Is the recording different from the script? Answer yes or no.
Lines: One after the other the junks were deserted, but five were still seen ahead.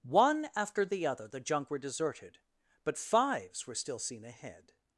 yes